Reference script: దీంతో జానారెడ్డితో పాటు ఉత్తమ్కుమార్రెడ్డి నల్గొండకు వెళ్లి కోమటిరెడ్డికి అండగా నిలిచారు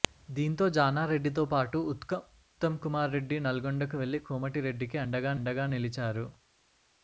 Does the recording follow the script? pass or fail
fail